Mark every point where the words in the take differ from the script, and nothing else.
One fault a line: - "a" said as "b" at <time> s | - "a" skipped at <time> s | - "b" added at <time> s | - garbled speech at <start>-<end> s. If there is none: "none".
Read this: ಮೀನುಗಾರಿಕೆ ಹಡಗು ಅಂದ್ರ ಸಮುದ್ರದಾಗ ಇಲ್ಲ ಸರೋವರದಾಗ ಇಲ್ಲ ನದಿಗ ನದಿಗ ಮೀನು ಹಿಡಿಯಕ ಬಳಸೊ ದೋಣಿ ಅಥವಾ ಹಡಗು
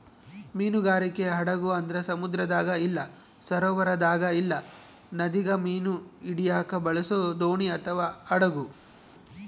- "ನದಿಗ" skipped at 5.5 s